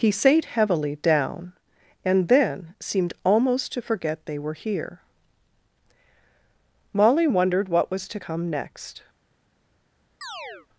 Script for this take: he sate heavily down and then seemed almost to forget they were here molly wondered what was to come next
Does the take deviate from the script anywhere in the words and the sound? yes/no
yes